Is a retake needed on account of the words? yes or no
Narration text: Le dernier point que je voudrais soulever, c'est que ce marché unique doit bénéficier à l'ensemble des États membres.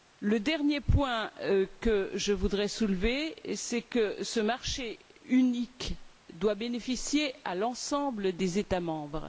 no